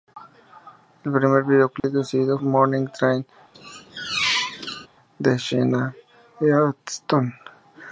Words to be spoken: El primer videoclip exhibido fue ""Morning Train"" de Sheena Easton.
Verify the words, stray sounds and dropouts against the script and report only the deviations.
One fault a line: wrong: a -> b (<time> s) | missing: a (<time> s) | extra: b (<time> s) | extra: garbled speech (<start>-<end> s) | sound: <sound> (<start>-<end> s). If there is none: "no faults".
sound: dropout (1.8-1.8 s)
missing: fue (2.4 s)
sound: squeak (3.5-4.9 s)